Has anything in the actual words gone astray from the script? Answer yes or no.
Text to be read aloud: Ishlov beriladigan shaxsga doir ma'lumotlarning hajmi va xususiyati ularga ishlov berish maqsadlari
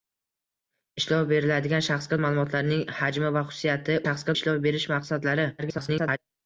yes